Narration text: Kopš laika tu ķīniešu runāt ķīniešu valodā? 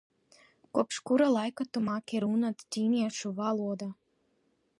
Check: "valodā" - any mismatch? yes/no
no